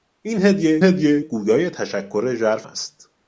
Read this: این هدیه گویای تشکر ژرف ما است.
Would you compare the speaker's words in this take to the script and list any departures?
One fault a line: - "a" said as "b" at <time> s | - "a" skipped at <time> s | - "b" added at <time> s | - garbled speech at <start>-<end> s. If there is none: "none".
- "هدیه" added at 0.8 s
- "ما" skipped at 2.7 s